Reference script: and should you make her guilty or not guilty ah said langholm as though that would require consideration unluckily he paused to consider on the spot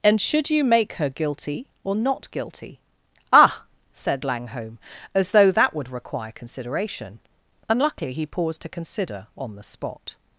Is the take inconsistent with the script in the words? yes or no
no